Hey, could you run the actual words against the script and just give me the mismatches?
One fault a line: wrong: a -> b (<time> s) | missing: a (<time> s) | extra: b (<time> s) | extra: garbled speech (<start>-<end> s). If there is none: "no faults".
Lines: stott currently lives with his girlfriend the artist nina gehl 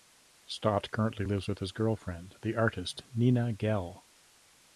no faults